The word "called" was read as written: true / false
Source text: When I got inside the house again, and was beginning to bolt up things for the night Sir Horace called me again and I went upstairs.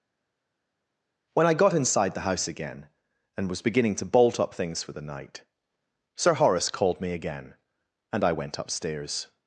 true